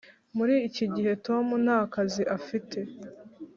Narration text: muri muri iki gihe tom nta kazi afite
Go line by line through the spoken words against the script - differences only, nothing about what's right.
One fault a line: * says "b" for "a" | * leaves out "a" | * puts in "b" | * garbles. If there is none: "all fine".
* leaves out "muri"